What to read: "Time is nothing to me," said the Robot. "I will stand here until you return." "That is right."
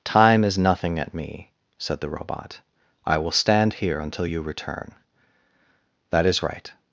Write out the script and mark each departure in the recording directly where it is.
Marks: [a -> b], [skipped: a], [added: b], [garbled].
"Time is nothing [to -> at] me," said the Robot. "I will stand here until you return." "That is right."